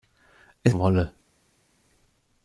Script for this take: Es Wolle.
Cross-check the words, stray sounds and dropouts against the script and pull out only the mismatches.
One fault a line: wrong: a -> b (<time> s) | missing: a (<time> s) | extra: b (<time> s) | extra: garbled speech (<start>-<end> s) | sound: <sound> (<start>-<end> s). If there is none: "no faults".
no faults